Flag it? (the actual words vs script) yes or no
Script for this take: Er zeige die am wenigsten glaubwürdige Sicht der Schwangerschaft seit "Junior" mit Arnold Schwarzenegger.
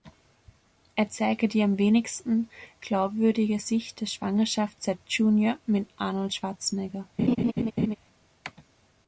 no